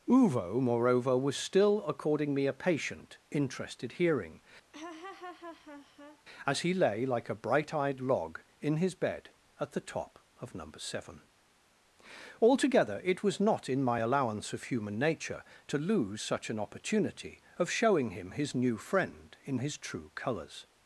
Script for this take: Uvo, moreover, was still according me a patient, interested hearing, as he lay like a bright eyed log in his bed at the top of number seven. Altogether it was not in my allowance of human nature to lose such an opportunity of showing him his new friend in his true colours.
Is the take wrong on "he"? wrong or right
right